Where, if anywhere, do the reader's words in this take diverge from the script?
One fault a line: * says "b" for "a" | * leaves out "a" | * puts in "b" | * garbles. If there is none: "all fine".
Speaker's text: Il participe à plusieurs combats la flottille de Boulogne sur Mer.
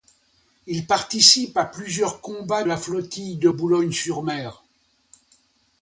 all fine